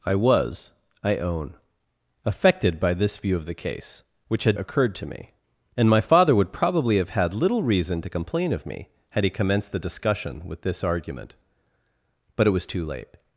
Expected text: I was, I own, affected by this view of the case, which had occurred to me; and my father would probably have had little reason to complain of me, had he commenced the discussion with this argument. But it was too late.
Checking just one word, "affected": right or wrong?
right